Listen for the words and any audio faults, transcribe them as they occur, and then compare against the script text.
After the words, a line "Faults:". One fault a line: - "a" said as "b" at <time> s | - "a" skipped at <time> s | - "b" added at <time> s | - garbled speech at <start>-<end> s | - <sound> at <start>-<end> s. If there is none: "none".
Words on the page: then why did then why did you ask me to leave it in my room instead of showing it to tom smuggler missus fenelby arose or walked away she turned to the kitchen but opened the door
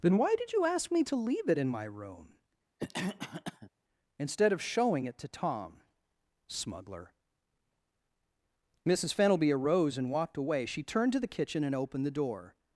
then why did you ask me to leave it in my room instead of showing it to tom smuggler missus fenelby arose and walked away she turned to the kitchen and opened the door
Faults:
- "then why did" skipped at 0.5 s
- cough at 2.8-3.7 s
- "or" said as "and" at 10.0 s
- "but" said as "and" at 11.6 s